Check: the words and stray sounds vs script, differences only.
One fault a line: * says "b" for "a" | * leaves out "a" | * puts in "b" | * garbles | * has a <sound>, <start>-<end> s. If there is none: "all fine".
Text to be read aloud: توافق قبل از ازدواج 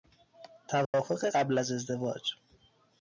* has a dropout, 0.8-0.9 s